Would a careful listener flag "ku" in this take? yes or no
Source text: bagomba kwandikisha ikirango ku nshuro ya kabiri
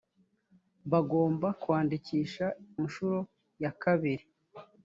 yes